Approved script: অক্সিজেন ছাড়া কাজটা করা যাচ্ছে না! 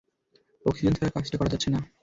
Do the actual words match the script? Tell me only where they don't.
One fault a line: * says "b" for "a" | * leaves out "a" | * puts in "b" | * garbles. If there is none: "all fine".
all fine